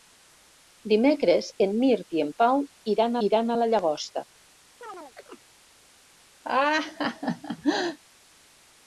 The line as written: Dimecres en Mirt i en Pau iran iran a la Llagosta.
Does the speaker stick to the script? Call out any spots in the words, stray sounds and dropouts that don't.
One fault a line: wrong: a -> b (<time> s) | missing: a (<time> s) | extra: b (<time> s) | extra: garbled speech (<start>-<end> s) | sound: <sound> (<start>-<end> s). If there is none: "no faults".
sound: chirp (4.8-5.5 s)
sound: laugh (6.4-8.0 s)